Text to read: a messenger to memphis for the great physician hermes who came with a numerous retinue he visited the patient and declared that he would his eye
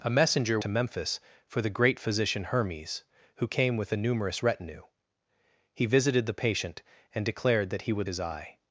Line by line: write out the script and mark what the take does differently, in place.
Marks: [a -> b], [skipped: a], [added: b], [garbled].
a messenger to memphis for the great physician hermes who came with a numerous retinue he visited the patient and declared that he would his eye